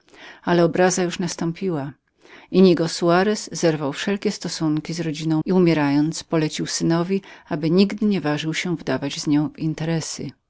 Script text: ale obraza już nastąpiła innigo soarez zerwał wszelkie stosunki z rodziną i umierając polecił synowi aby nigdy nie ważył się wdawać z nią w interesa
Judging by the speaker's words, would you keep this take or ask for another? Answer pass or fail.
pass